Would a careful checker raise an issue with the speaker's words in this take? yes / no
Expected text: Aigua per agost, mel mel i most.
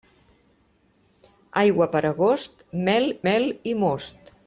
no